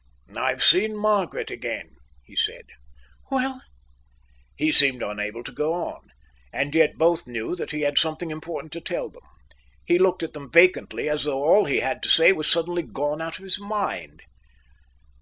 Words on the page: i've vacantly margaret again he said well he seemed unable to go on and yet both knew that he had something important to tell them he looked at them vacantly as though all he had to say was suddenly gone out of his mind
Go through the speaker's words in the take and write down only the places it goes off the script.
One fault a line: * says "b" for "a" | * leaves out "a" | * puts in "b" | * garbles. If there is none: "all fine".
* says "seen" for "vacantly"